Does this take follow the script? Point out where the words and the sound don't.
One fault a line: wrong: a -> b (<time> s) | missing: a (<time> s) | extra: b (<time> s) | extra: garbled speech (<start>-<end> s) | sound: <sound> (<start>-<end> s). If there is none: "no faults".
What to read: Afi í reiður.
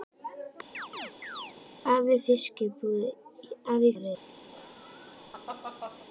sound: chirp (0.7-1.5 s)
sound: laugh (4.5-6.1 s)